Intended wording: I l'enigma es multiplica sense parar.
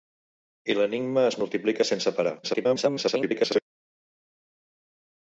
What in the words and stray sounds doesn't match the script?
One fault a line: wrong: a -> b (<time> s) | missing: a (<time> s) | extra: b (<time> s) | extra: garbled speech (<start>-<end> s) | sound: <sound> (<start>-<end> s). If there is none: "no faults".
extra: garbled speech (2.4-3.6 s)